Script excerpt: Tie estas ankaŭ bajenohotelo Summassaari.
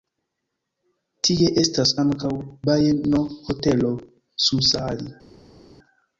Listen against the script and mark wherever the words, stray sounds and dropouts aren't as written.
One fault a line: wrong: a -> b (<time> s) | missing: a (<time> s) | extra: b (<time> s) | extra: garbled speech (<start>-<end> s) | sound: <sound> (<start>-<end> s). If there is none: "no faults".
no faults